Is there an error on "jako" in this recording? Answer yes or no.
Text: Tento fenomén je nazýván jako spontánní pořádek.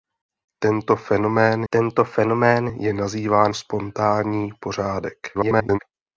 yes